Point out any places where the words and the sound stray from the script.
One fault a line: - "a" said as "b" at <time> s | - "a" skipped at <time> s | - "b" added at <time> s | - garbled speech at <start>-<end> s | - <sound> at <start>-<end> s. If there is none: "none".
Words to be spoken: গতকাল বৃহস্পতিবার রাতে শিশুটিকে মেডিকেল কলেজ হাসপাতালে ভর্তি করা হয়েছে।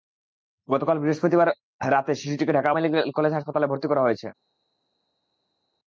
- "ঢাকা" added at 2.5 s